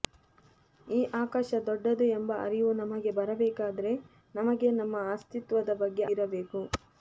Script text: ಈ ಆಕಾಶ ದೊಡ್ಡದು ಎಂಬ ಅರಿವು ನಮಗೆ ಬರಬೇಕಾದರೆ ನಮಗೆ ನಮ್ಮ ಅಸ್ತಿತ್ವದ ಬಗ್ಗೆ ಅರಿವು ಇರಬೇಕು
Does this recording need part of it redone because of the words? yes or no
yes